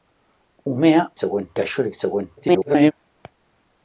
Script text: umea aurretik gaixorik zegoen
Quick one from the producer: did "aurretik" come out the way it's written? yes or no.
no